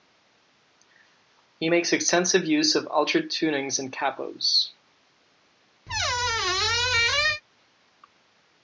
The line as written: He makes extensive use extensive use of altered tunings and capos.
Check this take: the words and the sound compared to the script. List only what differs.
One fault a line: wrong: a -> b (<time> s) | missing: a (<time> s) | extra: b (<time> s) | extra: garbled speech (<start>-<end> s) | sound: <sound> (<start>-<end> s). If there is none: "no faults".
missing: extensive use (2.8 s)
sound: squeak (5.9-7.4 s)